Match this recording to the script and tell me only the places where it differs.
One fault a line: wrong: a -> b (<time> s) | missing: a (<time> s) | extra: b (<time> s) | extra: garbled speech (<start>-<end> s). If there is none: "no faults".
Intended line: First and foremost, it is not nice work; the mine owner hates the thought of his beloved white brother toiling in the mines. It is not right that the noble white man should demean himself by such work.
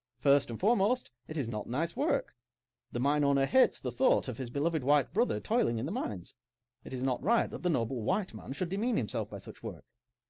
no faults